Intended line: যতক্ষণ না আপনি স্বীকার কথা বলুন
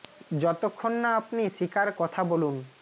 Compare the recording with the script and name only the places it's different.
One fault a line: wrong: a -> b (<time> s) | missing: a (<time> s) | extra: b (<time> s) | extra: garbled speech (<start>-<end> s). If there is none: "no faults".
no faults